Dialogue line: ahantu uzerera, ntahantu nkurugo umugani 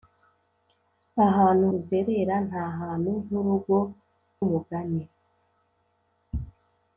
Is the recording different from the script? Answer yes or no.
no